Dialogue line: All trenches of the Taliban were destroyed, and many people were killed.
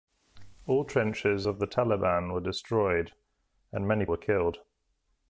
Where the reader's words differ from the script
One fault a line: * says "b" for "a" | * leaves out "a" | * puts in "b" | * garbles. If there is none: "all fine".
* leaves out "people"